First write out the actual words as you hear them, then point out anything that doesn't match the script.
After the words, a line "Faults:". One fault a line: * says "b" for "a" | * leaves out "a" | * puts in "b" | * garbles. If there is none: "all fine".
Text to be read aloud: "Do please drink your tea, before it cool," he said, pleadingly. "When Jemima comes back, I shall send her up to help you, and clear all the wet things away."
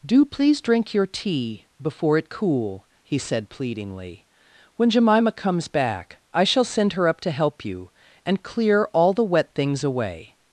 "Do please drink your tea, before it cool," he said, pleadingly. "When Jemima comes back, I shall send her up to help you, and clear all the wet things away."
Faults:
all fine